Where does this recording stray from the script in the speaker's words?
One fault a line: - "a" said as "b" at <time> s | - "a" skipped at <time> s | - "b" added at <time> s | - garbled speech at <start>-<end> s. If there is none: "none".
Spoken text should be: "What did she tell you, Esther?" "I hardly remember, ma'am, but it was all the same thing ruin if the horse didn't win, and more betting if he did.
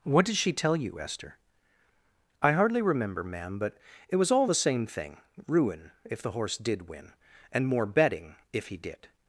- "didn't" said as "did" at 6.6 s